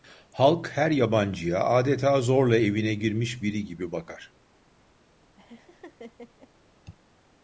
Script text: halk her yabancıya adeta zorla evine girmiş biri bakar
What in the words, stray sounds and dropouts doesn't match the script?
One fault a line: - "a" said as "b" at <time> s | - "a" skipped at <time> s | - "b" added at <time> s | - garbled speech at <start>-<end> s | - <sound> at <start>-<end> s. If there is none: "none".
- "gibi" added at 3.6 s
- laugh at 5.4-6.5 s